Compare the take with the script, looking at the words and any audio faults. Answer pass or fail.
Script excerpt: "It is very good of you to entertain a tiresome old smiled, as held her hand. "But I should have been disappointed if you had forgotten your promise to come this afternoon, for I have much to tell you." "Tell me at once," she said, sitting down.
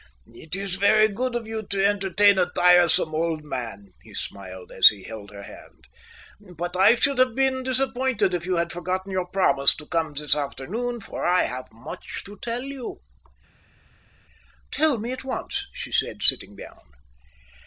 fail